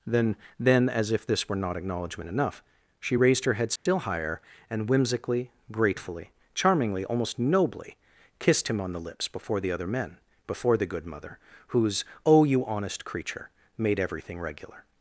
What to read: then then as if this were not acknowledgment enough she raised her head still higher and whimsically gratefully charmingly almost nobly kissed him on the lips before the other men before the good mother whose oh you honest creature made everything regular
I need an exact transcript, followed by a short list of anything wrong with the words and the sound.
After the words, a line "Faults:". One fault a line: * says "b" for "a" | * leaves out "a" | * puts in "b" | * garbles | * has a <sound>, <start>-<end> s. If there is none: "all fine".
then then as if this were not acknowledgment enough she raised her head still higher and whimsically gratefully charmingly almost nobly kissed him on the lips before the other men before the good mother whose oh you honest creature made everything regular
Faults:
* has a dropout, 3.8-3.9 s